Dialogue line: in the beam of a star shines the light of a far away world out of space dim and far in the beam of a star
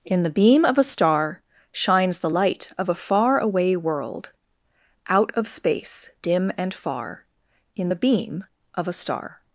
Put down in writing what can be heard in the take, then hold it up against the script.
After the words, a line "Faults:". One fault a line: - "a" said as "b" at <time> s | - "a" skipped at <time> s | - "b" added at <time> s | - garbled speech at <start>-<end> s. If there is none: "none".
in the beam of a star shines the light of a far away world out of space dim and far in the beam of a star
Faults:
none